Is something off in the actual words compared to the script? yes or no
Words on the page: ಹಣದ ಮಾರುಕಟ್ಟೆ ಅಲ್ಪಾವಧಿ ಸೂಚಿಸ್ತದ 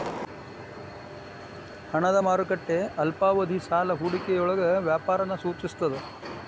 yes